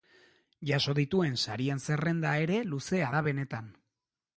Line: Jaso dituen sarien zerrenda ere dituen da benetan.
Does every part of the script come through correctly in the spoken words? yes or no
no